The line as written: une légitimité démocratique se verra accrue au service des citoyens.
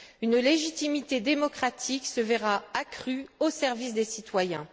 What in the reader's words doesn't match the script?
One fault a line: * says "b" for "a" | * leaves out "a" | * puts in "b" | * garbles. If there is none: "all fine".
all fine